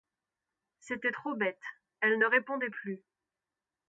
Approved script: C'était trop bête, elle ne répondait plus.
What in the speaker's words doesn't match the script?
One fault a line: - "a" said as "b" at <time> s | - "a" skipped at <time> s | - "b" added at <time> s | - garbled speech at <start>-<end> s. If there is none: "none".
none